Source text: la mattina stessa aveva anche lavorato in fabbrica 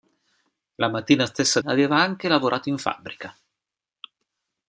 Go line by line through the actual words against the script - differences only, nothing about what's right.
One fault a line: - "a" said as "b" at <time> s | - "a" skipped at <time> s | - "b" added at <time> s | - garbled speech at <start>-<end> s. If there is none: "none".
none